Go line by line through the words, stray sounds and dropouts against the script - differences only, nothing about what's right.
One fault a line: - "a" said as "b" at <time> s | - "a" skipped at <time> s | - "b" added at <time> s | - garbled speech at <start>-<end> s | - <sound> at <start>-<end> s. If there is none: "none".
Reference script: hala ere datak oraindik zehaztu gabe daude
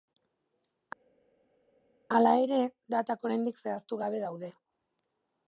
none